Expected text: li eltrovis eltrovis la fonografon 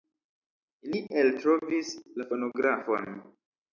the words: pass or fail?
fail